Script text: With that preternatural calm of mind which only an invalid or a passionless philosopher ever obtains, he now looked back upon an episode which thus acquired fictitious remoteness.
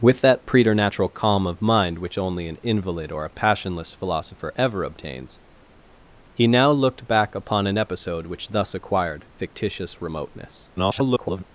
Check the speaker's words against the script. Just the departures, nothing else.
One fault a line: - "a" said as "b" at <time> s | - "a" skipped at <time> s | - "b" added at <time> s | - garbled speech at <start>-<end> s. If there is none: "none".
- garbled speech at 10.8-11.4 s